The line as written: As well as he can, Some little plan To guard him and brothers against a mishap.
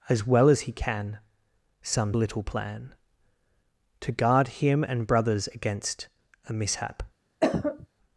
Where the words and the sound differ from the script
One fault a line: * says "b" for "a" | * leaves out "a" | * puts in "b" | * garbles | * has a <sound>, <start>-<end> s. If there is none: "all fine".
* has a cough, 7.4-7.9 s